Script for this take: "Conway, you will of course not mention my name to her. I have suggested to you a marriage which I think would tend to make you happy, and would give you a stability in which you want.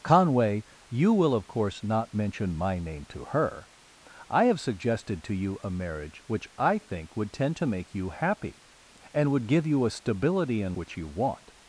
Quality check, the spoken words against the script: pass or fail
pass